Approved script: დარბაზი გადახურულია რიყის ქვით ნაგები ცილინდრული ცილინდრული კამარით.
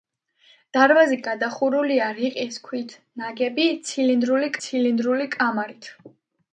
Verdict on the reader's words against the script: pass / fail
pass